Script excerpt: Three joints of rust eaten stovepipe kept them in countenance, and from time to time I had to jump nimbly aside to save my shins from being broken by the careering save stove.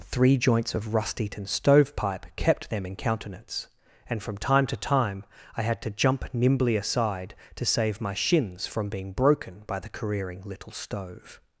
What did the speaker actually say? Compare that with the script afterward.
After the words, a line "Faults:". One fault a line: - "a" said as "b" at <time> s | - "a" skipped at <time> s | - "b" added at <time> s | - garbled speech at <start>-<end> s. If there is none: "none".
Three joints of rust eaten stovepipe kept them in countenance, and from time to time I had to jump nimbly aside to save my shins from being broken by the careering little stove.
Faults:
- "save" said as "little" at 10.4 s